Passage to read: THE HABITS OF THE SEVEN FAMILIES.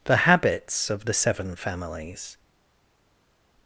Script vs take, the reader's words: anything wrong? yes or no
no